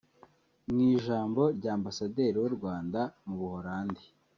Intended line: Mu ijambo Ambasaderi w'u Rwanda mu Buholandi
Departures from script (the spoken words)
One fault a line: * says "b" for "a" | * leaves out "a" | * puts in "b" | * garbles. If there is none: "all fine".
* puts in "rya"